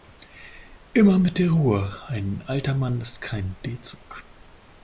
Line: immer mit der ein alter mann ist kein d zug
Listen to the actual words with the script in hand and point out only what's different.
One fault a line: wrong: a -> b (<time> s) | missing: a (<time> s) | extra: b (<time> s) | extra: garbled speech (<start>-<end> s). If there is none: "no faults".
extra: ruhe (1.5 s)